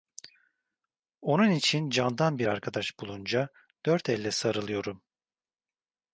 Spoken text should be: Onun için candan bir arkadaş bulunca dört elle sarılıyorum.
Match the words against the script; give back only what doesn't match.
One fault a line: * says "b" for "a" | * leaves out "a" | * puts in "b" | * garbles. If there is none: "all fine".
all fine